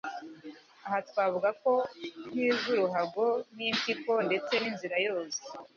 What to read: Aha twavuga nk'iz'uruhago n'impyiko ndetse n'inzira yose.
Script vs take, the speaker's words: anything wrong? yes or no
no